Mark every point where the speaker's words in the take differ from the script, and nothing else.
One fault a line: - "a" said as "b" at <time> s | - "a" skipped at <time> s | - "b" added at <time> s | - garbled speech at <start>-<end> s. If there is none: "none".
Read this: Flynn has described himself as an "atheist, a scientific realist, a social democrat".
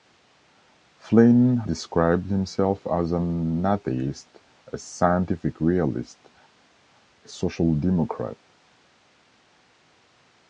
- "has" skipped at 1.6 s